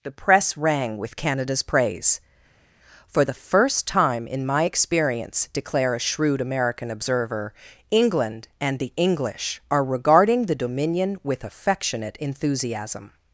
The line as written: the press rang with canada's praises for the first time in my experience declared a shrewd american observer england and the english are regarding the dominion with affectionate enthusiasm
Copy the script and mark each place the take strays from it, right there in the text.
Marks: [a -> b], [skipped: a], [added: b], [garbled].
the press rang with canada's [praises -> praise] for the first time in my experience [declared -> declare] a shrewd american observer england and the english are regarding the dominion with affectionate enthusiasm